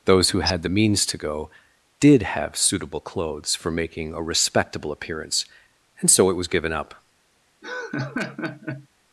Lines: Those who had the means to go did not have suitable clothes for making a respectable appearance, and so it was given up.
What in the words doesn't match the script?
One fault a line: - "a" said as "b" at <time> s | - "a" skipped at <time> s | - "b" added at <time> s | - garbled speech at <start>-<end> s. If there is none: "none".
- "not" skipped at 2.2 s